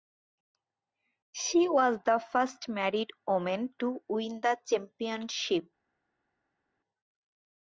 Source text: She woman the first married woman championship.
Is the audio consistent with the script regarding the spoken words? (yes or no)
no